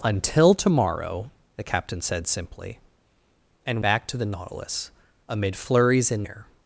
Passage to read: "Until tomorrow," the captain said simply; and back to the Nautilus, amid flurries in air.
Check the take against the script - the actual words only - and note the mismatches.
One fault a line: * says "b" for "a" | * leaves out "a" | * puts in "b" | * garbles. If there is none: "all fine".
all fine